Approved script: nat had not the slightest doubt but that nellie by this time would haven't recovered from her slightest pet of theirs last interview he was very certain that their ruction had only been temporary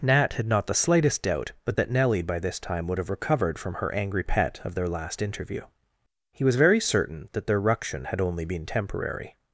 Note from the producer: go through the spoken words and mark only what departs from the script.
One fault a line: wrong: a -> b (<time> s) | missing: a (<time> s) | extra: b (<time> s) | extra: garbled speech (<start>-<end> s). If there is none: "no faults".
wrong: haven't -> have (3.0 s)
wrong: slightest -> angry (3.9 s)
wrong: theirs -> their (4.7 s)